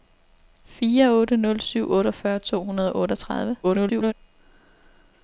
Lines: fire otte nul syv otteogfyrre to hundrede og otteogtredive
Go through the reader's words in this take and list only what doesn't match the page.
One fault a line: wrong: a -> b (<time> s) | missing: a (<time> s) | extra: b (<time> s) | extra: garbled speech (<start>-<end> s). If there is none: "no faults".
extra: garbled speech (3.6-4.1 s)